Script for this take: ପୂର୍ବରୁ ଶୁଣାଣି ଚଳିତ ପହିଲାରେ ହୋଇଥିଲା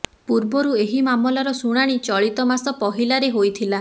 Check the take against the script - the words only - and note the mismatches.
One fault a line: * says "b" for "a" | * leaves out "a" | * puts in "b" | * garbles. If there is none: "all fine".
* puts in "ଏହି ମାମଲାର"
* puts in "ମାସ"